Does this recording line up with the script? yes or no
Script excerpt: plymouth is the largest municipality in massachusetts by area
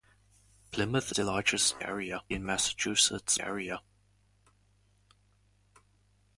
no